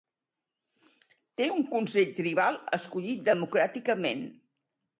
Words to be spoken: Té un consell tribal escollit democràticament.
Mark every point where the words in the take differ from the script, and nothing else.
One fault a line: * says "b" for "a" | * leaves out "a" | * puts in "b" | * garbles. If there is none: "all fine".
all fine